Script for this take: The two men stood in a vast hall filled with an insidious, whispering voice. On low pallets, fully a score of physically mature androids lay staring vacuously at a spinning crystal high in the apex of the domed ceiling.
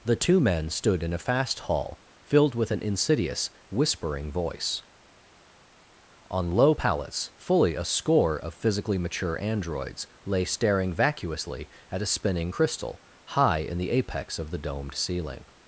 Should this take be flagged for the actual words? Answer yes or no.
yes